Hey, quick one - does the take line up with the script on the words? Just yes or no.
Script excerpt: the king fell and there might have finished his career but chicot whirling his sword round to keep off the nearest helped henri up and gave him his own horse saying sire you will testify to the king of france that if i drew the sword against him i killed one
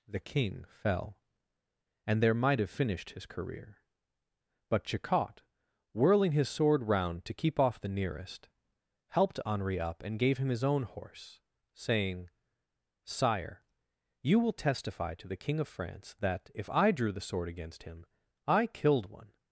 yes